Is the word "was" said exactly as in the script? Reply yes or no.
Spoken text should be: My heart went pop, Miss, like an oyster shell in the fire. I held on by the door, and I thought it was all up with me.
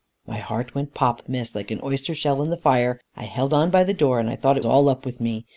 no